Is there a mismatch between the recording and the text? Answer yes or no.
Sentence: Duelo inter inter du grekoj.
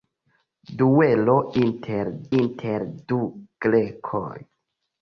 no